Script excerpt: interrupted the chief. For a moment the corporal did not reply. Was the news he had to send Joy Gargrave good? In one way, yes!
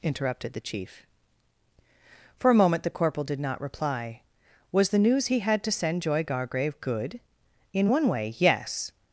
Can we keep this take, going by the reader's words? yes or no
yes